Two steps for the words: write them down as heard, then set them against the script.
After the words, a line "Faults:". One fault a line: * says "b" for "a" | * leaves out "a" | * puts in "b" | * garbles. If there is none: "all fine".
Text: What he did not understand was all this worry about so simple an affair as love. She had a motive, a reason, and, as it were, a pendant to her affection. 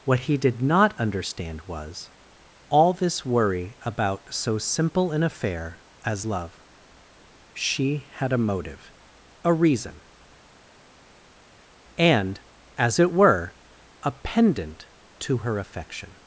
What he did not understand was all this worry about so simple an affair as love. She had a motive, a reason, and, as it were, a pendant to her affection.
Faults:
all fine